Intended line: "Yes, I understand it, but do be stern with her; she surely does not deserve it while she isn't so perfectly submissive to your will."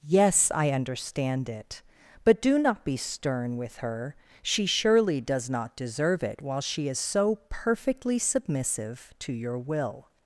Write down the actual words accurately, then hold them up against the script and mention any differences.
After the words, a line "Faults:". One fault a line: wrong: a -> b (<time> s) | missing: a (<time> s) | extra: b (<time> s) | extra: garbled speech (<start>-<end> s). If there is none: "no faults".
"Yes, I understand it, but do not be stern with her; she surely does not deserve it while she is so perfectly submissive to your will."
Faults:
extra: not (2.6 s)
wrong: isn't -> is (6.9 s)